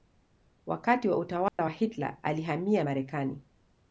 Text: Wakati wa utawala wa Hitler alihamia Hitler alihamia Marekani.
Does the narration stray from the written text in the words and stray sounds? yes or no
yes